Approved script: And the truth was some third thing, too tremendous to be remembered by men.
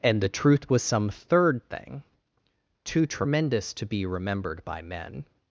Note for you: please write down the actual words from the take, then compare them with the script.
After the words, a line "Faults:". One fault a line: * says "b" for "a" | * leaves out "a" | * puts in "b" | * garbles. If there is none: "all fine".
And the truth was some third thing, too tremendous to be remembered by men.
Faults:
all fine